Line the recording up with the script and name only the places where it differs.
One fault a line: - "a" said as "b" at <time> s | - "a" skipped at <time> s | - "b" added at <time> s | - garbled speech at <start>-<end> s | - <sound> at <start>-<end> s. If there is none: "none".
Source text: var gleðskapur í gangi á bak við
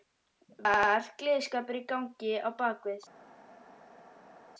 none